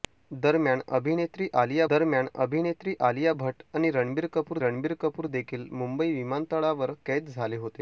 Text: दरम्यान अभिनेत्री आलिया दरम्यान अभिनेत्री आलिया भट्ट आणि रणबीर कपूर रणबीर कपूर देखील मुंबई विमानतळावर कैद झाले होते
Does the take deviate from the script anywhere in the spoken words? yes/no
no